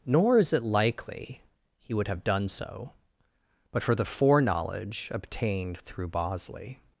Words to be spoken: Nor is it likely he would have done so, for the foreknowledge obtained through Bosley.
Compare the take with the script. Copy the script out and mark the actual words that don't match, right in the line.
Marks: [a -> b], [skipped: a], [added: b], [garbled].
Nor is it likely he would have done so, [added: but] for the foreknowledge obtained through Bosley.